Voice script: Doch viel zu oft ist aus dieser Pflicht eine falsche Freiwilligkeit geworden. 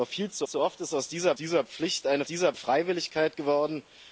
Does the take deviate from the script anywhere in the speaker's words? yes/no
yes